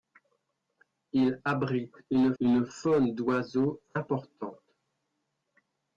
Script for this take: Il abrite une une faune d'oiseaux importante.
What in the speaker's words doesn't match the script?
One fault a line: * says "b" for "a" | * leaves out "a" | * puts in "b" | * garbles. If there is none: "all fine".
all fine